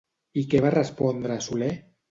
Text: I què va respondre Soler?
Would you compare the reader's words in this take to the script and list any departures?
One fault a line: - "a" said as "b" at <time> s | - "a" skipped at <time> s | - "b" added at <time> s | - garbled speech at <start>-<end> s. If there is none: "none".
none